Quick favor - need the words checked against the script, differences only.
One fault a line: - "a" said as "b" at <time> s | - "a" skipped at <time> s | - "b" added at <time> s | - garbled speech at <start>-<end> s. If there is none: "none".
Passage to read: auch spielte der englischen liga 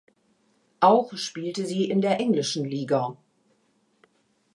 - "sie in" added at 1.7 s